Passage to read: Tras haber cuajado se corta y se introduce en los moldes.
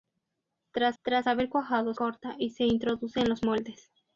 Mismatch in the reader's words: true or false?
true